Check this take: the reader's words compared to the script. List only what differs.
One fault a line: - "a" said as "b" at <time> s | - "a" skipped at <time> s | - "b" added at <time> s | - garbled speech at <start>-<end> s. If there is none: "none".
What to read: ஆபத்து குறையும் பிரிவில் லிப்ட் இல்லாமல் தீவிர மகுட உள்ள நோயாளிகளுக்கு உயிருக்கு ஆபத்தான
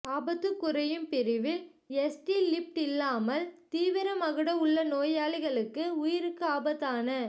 - "எஸ்டி" added at 2.0 s